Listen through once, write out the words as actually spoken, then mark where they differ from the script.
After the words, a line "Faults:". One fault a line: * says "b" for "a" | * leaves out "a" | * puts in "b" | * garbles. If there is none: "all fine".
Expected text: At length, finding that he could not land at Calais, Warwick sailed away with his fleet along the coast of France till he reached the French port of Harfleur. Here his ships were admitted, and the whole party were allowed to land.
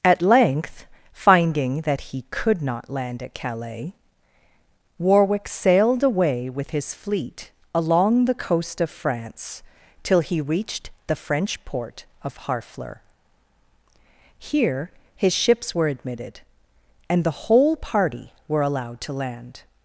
At length, finding that he could not land at Calais, Warwick sailed away with his fleet along the coast of France till he reached the French port of Harfleur. Here his ships were admitted, and the whole party were allowed to land.
Faults:
all fine